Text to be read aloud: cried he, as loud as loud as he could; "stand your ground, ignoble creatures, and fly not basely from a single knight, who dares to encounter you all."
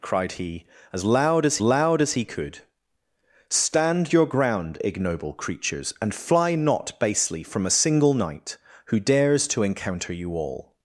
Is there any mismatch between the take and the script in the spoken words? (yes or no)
no